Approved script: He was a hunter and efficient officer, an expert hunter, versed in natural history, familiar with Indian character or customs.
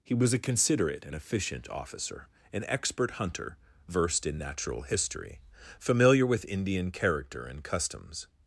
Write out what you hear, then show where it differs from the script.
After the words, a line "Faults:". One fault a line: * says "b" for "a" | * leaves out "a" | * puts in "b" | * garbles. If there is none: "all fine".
He was a considerate and efficient officer, an expert hunter, versed in natural history, familiar with Indian character and customs.
Faults:
* says "considerate" for "hunter"
* says "and" for "or"